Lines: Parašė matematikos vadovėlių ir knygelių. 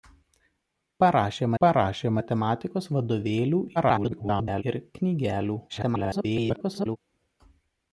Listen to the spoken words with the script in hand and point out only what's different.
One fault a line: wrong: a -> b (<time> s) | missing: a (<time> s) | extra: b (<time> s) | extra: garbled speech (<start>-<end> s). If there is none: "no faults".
extra: parašė (1.6 s)
extra: garbled speech (3.8-4.6 s)
extra: garbled speech (5.7-7.0 s)